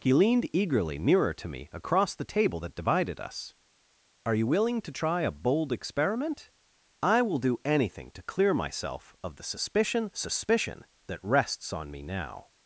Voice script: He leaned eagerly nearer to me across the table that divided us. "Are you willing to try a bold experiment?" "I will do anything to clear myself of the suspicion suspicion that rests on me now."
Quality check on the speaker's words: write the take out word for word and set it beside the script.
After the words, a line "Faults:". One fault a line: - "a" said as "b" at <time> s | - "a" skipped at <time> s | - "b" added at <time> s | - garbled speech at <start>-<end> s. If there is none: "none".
He leaned eagerly nearer to me across the table that divided us. "Are you willing to try a bold experiment?" "I will do anything to clear myself of the suspicion suspicion that rests on me now."
Faults:
none